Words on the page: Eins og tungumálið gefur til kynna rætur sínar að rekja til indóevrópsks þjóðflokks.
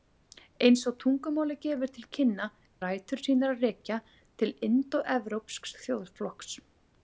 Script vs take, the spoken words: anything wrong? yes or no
no